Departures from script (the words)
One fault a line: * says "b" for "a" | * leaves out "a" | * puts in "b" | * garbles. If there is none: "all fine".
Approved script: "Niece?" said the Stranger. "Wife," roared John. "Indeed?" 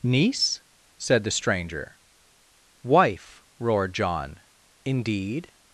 all fine